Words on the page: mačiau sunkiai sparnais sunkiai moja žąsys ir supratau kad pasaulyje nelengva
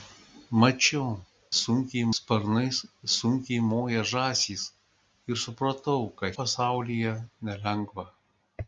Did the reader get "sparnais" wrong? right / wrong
right